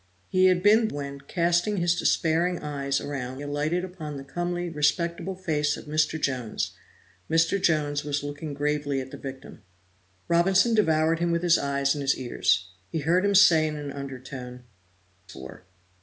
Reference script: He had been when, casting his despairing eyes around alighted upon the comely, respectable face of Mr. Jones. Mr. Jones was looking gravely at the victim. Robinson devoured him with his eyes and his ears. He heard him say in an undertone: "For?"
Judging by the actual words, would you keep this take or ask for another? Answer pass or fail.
pass